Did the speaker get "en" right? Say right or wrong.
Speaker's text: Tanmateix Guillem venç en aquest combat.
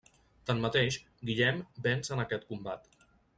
right